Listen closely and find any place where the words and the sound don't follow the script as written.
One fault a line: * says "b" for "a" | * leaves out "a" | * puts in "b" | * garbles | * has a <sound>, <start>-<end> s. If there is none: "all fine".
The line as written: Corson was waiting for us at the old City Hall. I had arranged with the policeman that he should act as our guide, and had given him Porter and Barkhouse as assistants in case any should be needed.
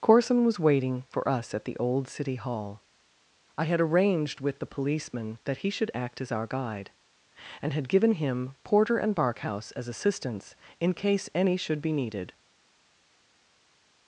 all fine